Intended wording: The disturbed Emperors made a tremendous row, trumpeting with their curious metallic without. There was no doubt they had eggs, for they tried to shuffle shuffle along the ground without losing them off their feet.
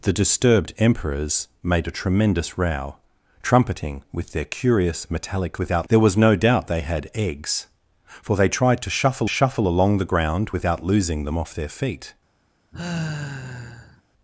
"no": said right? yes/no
yes